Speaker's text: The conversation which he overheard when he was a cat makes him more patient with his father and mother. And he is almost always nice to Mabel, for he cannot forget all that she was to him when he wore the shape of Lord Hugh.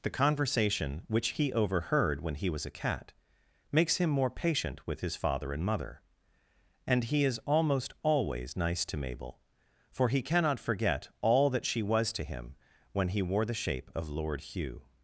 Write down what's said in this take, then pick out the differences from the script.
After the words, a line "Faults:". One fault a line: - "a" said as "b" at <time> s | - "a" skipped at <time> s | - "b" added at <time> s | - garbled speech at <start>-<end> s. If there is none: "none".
The conversation which he overheard when he was a cat makes him more patient with his father and mother. And he is almost always nice to Mabel, for he cannot forget all that she was to him when he wore the shape of Lord Hugh.
Faults:
none